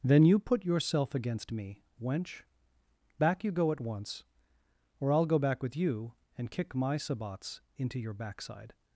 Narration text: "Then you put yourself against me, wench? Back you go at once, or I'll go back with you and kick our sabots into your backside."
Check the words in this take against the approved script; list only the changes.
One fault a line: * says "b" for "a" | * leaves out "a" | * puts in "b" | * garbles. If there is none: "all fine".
* says "my" for "our"